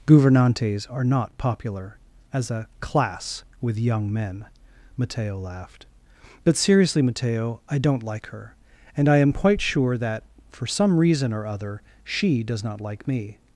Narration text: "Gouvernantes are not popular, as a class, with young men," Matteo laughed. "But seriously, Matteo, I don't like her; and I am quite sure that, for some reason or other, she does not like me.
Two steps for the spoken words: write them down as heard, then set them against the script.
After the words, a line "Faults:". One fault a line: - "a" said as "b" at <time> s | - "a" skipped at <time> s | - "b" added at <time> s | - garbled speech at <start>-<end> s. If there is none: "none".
"Gouvernantes are not popular, as a class, with young men," Matteo laughed. "But seriously, Matteo, I don't like her; and I am quite sure that, for some reason or other, she does not like me.
Faults:
none